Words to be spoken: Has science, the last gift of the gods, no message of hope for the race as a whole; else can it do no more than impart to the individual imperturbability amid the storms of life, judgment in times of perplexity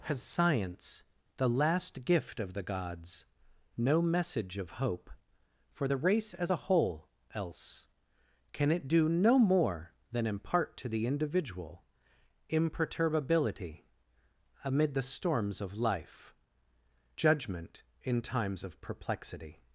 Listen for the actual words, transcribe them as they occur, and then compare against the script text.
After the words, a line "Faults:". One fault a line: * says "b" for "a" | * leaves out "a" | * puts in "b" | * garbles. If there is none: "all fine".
Has science, the last gift of the gods, no message of hope for the race as a whole; else can it do no more than impart to the individual imperturbability amid the storms of life, judgment in times of perplexity
Faults:
all fine